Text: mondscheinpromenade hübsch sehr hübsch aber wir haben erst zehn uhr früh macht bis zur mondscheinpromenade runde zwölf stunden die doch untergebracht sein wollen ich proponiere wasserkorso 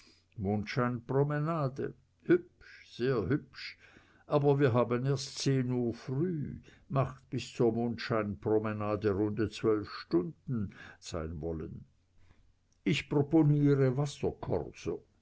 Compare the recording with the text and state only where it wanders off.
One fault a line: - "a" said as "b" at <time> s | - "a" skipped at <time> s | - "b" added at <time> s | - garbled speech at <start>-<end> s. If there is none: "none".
- "die doch untergebracht" skipped at 10.7 s